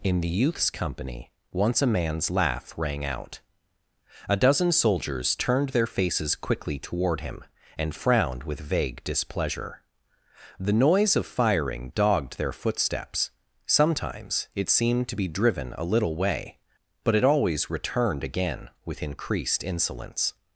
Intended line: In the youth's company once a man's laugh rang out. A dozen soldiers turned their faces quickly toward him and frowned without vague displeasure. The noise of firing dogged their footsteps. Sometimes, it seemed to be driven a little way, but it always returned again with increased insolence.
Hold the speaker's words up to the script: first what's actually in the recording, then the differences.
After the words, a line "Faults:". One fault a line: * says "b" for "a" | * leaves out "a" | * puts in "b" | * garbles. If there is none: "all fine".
In the youth's company once a man's laugh rang out. A dozen soldiers turned their faces quickly toward him and frowned with vague displeasure. The noise of firing dogged their footsteps. Sometimes, it seemed to be driven a little way, but it always returned again with increased insolence.
Faults:
* says "with" for "without"